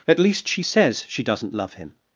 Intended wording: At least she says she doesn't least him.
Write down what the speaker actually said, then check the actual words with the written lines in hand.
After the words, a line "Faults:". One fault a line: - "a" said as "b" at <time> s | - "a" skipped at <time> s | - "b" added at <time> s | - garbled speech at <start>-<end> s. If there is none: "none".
At least she says she doesn't love him.
Faults:
- "least" said as "love" at 1.5 s